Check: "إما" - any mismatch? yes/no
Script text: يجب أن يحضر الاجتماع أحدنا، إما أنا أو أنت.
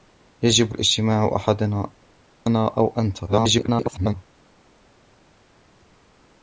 yes